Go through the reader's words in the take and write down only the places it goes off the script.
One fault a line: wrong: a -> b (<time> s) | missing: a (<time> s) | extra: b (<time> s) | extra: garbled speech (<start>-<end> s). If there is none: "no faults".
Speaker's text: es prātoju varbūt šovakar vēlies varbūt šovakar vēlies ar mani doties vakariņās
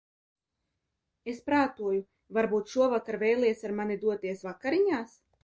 missing: varbūt šovakar vēlies (3.6 s)